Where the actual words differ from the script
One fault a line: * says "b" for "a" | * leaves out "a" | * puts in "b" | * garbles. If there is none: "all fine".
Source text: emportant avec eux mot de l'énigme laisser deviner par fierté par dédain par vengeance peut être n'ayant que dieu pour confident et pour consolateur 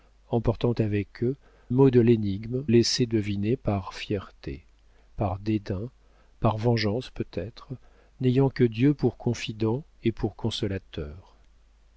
all fine